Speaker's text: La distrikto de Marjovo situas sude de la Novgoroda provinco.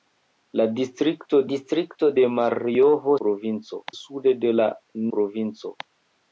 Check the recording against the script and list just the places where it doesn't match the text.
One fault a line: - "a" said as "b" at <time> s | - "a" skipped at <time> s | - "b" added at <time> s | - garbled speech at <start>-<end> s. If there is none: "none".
- "distrikto" added at 1.5 s
- "situas" said as "provinco" at 3.2 s
- "Novgoroda" skipped at 4.7 s